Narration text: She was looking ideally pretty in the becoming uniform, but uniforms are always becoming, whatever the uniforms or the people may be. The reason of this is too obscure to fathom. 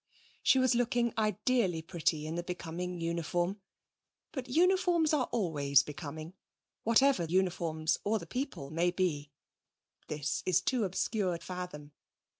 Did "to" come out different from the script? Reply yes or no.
yes